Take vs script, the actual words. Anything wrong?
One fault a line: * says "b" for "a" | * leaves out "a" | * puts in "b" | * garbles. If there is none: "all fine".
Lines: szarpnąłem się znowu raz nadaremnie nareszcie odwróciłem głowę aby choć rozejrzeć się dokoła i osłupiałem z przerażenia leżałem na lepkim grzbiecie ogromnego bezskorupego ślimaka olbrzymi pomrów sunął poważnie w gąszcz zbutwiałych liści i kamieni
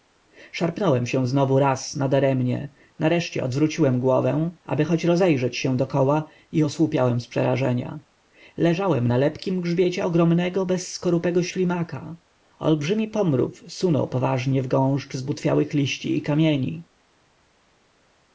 all fine